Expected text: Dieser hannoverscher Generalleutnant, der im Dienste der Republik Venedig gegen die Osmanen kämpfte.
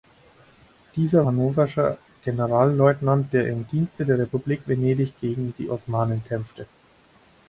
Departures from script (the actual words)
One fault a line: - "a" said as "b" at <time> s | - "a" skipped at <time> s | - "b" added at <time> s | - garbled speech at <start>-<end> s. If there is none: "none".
none